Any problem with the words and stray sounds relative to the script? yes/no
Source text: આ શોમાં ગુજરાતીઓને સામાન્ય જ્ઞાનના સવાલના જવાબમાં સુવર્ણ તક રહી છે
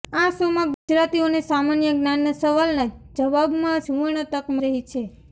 yes